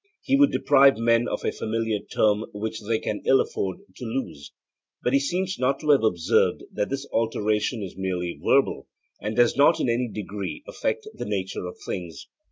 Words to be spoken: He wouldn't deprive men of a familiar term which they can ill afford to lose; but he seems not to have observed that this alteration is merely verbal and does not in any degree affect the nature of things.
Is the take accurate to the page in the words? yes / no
no